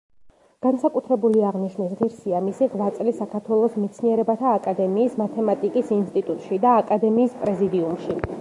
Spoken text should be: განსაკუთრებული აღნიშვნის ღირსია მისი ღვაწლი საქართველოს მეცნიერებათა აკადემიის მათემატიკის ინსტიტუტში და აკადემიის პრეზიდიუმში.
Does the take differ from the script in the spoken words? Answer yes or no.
no